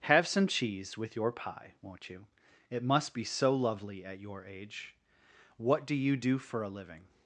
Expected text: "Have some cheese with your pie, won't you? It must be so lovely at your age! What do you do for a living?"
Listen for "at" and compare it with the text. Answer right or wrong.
right